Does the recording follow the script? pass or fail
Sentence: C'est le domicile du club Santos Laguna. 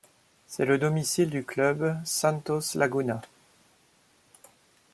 pass